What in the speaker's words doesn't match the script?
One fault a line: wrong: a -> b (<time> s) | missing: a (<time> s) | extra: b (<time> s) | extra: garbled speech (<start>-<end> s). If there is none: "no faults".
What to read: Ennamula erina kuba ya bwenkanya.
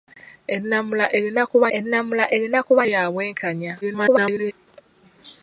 extra: ennamula erina kuba (1.8 s)
extra: garbled speech (3.8-4.5 s)